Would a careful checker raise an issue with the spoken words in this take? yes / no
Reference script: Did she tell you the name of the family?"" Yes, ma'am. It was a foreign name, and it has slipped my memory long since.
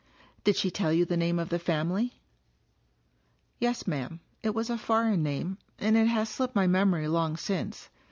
no